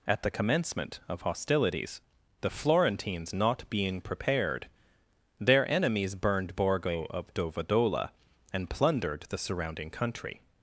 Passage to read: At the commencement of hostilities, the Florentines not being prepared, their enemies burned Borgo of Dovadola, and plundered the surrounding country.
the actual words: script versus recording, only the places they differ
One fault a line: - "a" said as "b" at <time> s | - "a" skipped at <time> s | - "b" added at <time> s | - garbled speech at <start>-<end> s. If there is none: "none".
none